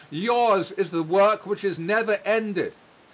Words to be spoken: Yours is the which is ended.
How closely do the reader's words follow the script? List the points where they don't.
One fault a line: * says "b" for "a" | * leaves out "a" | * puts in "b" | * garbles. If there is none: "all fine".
* puts in "work"
* puts in "never"